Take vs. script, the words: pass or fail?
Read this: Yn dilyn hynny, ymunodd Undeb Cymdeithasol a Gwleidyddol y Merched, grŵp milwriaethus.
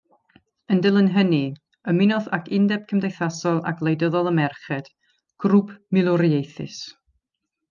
fail